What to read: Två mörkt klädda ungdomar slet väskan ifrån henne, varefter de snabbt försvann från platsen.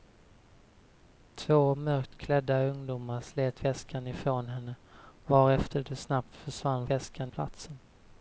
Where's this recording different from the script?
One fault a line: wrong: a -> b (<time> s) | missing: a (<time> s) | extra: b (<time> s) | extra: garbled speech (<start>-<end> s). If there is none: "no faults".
wrong: från -> väskan (6.9 s)